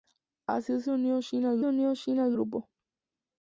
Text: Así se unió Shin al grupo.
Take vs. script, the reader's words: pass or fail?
fail